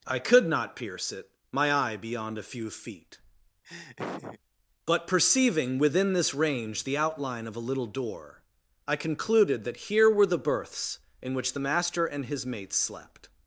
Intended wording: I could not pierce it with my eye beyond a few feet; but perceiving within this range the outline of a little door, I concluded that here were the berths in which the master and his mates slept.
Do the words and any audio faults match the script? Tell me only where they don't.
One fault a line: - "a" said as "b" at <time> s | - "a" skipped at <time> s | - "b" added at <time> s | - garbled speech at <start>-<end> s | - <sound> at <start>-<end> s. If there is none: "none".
- "with" skipped at 1.3 s
- laugh at 3.6-4.4 s